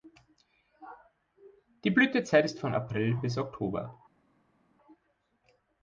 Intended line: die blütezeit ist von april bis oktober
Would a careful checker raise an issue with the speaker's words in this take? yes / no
no